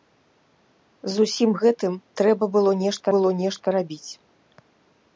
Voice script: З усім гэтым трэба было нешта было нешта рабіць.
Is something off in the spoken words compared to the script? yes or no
no